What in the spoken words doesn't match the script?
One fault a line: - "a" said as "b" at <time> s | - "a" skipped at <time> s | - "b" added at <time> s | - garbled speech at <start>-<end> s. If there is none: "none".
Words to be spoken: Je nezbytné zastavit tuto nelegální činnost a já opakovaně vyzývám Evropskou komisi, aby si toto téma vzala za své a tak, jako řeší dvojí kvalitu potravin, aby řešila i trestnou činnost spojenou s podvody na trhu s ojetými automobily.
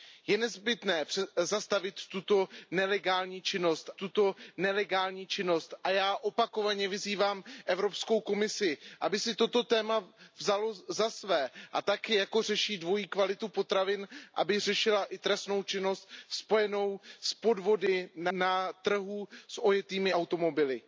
- "tuto nelegální činnost" added at 3.9 s